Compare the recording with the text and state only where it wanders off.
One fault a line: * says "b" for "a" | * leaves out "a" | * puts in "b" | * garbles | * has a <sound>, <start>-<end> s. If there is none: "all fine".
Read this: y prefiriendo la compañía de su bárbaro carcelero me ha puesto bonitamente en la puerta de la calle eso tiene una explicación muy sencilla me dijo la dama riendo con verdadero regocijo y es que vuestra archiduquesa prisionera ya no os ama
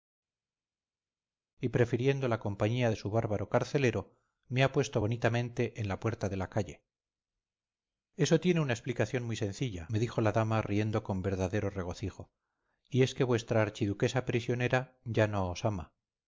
all fine